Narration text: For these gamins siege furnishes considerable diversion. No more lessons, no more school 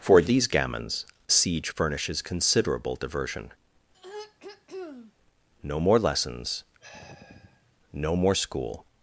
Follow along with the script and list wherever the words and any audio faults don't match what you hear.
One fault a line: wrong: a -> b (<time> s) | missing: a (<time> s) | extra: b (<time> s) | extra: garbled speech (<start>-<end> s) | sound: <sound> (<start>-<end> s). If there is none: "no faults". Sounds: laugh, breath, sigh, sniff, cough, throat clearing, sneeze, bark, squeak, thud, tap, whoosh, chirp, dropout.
sound: throat clearing (3.9-5.1 s)
sound: sigh (6.8-7.8 s)